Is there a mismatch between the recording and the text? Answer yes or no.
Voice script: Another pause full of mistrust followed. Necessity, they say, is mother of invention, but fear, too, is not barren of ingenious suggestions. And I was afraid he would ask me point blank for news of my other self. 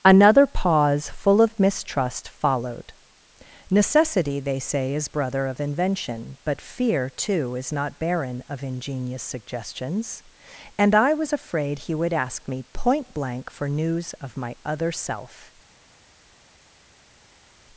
yes